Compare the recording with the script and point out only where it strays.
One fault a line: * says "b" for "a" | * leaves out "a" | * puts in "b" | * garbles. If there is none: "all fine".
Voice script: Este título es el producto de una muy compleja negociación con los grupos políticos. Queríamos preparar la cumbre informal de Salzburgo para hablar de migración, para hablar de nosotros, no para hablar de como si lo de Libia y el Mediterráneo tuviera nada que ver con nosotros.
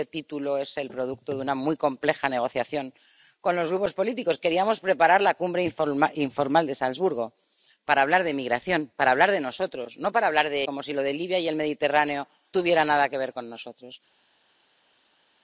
all fine